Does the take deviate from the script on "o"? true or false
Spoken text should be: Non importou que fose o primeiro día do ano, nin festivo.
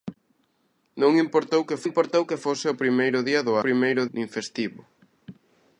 false